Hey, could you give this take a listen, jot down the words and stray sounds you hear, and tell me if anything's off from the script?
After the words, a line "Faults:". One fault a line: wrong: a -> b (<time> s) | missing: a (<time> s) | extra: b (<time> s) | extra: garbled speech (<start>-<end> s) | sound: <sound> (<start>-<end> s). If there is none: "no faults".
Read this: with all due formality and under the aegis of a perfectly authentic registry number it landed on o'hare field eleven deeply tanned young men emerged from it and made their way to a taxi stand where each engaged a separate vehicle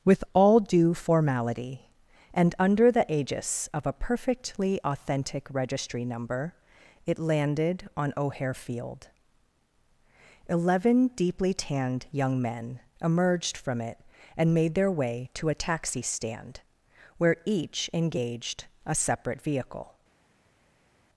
with all due formality and under the aegis of a perfectly authentic registry number it landed on o'hare field eleven deeply tanned young men emerged from it and made their way to a taxi stand where each engaged a separate vehicle
Faults:
no faults